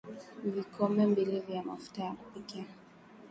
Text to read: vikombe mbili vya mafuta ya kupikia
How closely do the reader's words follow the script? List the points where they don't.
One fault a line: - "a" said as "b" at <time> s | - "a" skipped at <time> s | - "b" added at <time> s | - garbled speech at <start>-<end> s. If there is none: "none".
none